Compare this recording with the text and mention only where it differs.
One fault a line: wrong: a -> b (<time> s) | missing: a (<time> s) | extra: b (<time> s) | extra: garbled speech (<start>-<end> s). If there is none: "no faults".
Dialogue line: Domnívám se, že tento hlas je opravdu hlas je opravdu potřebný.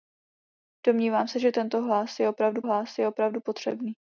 no faults